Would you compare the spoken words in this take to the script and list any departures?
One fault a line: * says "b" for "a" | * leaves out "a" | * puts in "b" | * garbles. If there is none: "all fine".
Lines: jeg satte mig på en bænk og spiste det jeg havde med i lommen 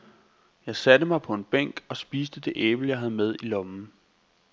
* puts in "æble"